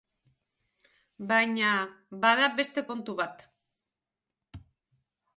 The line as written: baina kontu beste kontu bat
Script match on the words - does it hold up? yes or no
no